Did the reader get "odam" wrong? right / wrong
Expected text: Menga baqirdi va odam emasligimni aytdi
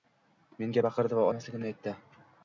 wrong